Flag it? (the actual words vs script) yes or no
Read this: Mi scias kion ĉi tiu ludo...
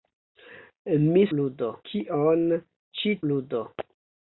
yes